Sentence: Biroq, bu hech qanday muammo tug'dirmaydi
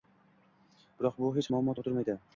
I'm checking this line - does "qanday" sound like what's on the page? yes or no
no